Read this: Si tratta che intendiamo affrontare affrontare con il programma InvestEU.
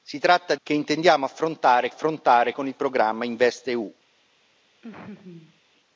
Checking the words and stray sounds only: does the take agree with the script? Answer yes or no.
no